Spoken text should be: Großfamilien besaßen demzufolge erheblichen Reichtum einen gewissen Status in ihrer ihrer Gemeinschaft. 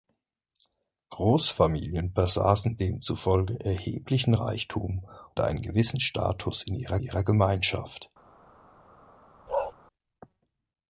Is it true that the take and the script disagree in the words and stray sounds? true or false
true